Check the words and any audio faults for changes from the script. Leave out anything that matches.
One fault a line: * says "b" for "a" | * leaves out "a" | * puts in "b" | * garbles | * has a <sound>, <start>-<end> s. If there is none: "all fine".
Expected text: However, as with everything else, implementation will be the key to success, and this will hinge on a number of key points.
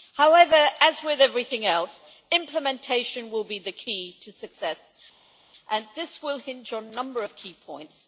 all fine